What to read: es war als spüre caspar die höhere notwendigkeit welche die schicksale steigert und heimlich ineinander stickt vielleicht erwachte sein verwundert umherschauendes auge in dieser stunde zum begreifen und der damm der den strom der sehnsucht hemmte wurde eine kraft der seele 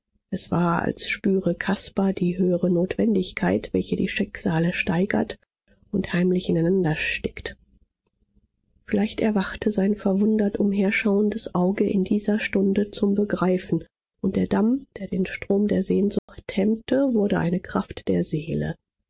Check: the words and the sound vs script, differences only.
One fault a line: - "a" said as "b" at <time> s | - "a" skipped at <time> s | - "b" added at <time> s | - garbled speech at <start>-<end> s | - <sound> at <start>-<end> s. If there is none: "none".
- dropout at 16.2-16.3 s